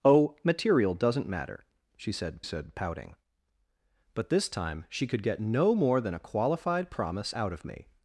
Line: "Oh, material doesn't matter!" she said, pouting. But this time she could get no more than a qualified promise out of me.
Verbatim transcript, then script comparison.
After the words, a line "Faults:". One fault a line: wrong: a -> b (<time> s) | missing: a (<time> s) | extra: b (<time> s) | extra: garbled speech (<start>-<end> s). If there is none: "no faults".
"Oh, material doesn't matter!" she said said, pouting. But this time she could get no more than a qualified promise out of me.
Faults:
extra: said (2.4 s)